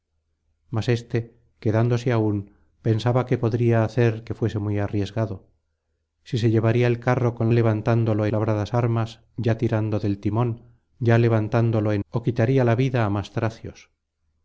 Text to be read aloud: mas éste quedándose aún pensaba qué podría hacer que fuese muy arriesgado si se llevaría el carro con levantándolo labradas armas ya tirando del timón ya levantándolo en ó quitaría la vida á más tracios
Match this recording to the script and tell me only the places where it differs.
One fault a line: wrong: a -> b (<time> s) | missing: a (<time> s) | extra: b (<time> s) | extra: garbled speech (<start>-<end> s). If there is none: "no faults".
no faults